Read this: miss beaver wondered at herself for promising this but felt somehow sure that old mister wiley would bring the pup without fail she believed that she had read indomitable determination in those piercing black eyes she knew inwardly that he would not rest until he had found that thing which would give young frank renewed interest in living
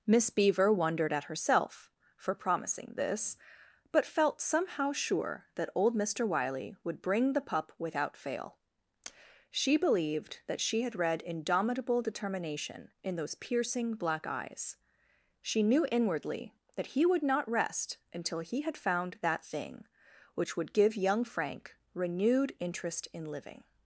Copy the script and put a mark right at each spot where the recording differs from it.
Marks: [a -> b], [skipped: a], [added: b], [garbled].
miss beaver wondered at herself for promising this but felt somehow sure that old mister wiley would bring the pup without fail she believed that she had read indomitable determination in those piercing black eyes she knew inwardly that he would not rest until he had found that thing which would give young frank renewed interest in living